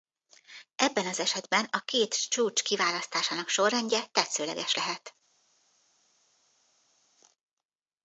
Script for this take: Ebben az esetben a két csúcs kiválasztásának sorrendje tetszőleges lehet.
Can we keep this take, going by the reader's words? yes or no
yes